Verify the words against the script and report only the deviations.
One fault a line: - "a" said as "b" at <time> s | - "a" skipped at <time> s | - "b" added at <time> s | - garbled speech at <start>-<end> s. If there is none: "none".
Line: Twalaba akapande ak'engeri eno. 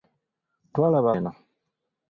- "akapande ak'engeri" skipped at 1.1 s